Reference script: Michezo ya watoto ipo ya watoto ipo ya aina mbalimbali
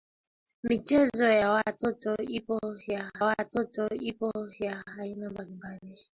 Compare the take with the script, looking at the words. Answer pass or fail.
pass